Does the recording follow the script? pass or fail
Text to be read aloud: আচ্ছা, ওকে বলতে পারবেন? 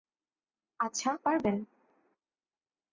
fail